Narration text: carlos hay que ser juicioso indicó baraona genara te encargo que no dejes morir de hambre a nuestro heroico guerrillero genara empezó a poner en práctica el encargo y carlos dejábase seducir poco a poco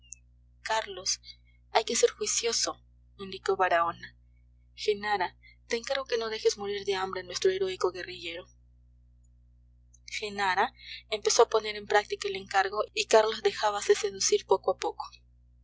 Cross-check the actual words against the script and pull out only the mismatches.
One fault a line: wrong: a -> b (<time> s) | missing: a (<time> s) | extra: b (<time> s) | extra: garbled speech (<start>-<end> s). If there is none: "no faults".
no faults